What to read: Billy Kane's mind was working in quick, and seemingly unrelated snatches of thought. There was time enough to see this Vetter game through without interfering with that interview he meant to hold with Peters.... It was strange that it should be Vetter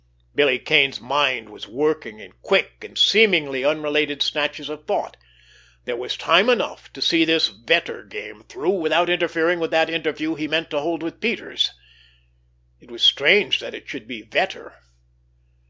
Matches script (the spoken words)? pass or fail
pass